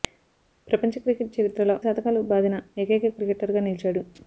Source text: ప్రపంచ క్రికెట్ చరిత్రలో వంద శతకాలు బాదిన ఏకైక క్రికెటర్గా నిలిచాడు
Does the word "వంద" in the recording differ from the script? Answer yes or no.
yes